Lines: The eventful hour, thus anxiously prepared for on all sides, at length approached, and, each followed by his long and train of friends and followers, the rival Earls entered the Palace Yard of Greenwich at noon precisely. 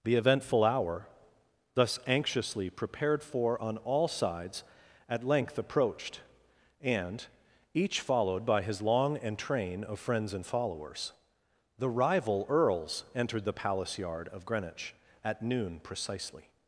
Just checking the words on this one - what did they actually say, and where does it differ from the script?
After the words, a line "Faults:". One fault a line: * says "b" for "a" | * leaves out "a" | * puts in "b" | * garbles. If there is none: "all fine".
The eventful hour, thus anxiously prepared for on all sides, at length approached, and, each followed by his long and train of friends and followers, the rival Earls entered the Palace Yard of Greenwich at noon precisely.
Faults:
all fine